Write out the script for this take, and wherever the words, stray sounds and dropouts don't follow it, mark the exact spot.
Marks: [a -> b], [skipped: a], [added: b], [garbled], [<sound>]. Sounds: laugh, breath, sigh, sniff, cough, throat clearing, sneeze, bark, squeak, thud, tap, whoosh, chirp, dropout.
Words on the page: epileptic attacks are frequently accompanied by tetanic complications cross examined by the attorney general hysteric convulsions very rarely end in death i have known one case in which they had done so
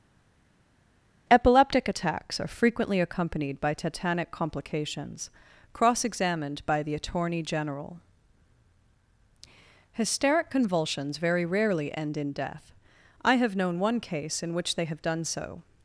epileptic attacks are frequently accompanied by tetanic complications cross examined by the attorney general hysteric convulsions very rarely end in death i have known one case in which they [had -> have] done so